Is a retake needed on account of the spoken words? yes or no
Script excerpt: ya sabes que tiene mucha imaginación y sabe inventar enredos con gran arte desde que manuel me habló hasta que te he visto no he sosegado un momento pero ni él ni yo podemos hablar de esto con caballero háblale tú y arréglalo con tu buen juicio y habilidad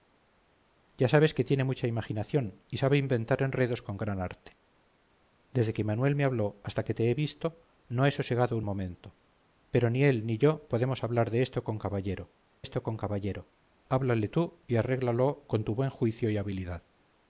yes